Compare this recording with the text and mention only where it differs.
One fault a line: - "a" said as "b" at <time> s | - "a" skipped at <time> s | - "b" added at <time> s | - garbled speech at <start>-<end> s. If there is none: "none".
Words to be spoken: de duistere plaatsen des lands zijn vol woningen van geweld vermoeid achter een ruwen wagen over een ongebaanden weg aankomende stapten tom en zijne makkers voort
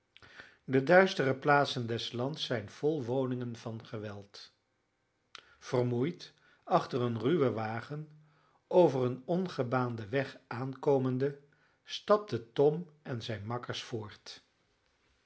none